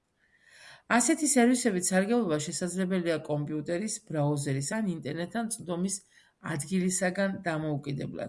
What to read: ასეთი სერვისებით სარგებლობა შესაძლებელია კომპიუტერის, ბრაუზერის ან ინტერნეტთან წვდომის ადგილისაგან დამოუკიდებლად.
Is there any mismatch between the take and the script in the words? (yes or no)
no